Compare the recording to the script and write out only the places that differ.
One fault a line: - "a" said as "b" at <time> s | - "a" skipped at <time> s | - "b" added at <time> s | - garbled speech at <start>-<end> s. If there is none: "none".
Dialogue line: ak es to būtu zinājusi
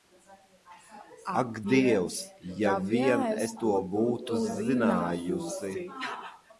- "dievs ja vien" added at 1.7 s